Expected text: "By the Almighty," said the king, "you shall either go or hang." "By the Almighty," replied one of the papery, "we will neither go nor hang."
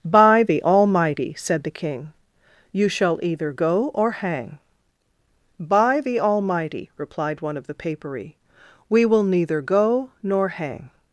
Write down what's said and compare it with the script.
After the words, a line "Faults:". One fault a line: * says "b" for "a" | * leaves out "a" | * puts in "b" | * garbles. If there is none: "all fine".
"By the Almighty," said the king, "you shall either go or hang." "By the Almighty," replied one of the papery, "we will neither go nor hang."
Faults:
all fine